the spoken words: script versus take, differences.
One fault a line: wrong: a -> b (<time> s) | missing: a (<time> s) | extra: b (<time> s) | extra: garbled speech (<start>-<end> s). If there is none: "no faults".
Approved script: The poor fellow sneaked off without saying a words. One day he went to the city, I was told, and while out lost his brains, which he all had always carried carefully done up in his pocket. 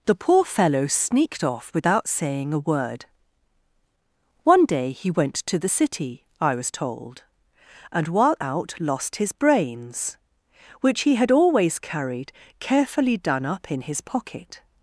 wrong: words -> word (2.6 s)
missing: all (11.2 s)